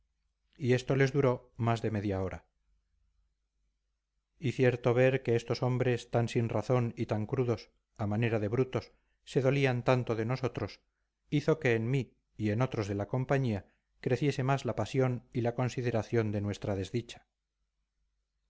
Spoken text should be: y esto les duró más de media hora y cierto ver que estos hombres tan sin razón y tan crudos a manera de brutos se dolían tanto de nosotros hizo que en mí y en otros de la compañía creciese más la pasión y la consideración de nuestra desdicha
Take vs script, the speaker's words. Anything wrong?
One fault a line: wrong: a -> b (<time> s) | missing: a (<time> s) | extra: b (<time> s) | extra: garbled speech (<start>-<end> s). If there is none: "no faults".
no faults